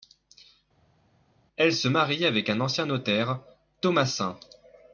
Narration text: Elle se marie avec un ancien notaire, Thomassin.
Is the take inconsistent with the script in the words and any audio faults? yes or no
no